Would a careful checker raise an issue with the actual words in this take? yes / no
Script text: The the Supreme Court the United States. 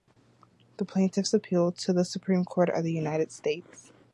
yes